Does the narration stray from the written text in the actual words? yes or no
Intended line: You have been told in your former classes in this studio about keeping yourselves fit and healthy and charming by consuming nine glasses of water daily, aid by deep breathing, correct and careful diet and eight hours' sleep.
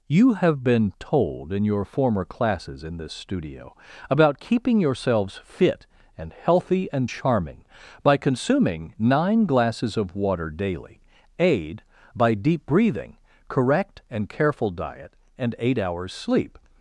no